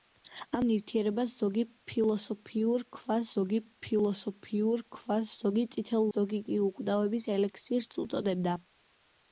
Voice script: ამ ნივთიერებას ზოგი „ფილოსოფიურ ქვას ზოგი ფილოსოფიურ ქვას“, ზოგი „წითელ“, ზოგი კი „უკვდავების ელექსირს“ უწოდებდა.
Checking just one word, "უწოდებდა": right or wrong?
right